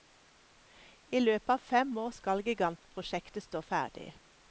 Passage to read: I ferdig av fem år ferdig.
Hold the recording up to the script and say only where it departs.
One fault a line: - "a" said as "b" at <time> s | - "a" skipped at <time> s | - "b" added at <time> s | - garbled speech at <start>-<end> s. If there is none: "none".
- "ferdig" said as "løpet" at 1.2 s
- "skal gigantprosjektet stå" added at 2.2 s